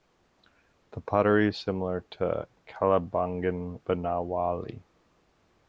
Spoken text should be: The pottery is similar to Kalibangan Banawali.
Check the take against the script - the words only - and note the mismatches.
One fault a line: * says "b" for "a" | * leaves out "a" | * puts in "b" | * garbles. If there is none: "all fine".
all fine